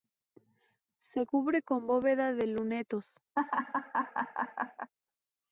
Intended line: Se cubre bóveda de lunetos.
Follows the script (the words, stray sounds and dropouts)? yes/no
no